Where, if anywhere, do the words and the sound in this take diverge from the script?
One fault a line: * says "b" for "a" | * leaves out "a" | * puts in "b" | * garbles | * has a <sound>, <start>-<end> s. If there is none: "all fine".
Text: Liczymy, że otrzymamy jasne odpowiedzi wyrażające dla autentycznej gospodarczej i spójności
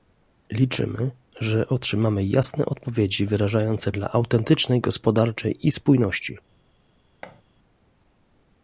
* has a thud, 7.2-7.4 s